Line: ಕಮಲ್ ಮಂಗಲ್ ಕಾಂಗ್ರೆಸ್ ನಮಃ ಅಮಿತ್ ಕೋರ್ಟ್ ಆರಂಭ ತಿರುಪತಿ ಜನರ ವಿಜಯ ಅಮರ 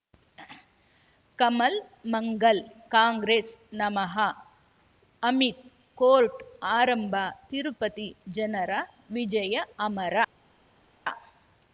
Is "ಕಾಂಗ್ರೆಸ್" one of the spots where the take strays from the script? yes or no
no